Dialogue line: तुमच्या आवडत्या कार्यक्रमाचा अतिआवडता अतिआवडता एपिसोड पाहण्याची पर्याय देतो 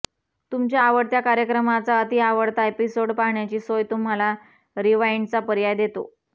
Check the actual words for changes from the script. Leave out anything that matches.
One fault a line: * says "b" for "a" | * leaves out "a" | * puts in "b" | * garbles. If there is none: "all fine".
* leaves out "अतिआवडता"
* puts in "सोय तुम्हाला रिवाइंडचा"